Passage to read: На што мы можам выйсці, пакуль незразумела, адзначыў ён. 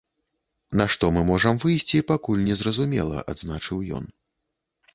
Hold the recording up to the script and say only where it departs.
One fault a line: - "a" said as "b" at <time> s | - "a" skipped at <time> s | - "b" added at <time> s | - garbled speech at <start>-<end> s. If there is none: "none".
none